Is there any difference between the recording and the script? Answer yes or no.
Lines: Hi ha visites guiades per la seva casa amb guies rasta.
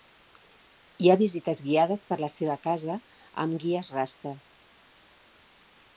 no